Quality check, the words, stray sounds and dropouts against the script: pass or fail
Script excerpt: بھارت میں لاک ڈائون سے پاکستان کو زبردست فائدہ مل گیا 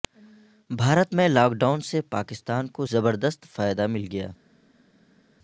pass